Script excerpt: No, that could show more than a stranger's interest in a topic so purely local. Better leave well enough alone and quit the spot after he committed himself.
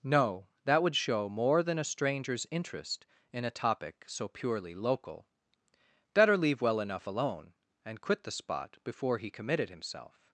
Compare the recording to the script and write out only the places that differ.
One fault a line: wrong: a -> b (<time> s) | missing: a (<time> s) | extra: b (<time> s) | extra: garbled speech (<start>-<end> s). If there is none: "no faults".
wrong: could -> would (0.8 s)
wrong: after -> before (8.8 s)